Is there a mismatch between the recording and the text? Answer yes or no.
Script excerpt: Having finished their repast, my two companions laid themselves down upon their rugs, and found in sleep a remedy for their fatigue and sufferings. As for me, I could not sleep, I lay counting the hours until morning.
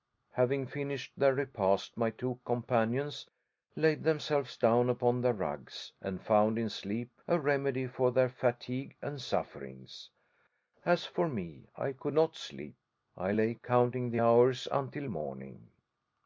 no